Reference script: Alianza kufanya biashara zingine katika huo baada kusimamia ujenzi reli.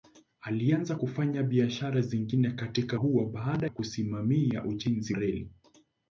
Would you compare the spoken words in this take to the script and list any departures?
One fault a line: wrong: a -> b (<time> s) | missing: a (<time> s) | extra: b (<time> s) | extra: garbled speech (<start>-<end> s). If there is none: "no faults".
no faults